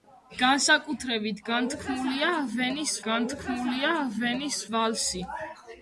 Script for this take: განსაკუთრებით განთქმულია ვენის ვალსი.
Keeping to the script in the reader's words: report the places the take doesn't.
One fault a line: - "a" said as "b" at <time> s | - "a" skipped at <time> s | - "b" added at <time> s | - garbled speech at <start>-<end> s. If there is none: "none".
- "განთქმულია ვენის" added at 3.1 s